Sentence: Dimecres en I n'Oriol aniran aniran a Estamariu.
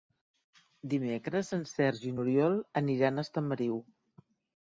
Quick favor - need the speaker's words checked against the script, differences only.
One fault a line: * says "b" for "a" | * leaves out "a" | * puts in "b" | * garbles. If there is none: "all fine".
* puts in "Sergi"
* leaves out "aniran"